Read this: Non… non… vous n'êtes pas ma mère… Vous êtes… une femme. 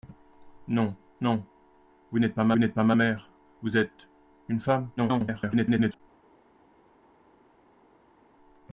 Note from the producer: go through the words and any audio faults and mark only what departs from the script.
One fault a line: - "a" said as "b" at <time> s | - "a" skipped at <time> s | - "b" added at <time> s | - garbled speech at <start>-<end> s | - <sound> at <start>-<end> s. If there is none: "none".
- "n'êtes pas ma" added at 2.6 s
- garbled speech at 5.0-6.0 s